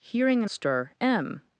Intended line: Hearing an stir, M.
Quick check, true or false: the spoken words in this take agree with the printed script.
true